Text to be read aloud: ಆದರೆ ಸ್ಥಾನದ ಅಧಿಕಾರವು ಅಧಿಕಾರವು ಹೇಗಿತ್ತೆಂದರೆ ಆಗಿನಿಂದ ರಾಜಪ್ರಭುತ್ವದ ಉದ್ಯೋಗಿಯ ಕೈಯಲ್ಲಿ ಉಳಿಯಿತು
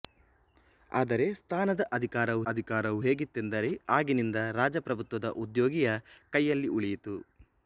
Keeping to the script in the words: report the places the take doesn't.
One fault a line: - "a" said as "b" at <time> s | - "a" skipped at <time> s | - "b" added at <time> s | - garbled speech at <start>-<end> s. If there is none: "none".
none